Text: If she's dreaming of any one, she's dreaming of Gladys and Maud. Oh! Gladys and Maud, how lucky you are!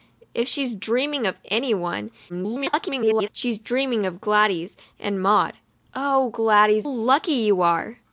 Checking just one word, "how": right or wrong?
wrong